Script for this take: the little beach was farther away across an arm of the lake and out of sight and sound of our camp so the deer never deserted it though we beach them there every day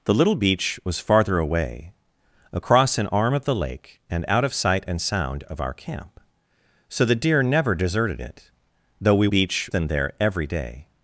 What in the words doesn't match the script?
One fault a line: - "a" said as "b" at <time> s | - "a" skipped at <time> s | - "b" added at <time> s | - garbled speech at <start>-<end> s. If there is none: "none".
none